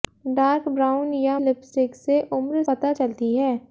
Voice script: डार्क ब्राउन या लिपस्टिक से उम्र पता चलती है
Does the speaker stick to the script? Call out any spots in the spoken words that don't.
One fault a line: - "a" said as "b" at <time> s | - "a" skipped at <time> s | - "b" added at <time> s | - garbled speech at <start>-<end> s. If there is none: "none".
none